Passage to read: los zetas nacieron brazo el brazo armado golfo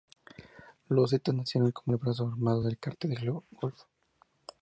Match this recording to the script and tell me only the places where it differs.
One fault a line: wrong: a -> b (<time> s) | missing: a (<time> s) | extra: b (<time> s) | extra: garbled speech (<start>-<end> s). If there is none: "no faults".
wrong: brazo -> como (1.7 s)
extra: del cártel del (2.6 s)